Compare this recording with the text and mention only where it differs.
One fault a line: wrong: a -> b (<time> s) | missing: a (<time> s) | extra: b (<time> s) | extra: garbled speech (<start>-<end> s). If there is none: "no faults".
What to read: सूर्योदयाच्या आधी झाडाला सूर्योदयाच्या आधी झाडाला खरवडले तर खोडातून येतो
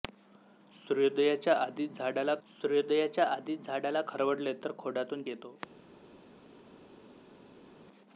no faults